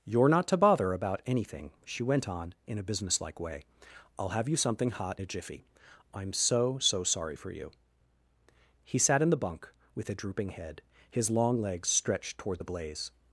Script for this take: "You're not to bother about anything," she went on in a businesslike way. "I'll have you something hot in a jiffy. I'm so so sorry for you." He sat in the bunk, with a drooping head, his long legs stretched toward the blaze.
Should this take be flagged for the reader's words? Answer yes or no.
yes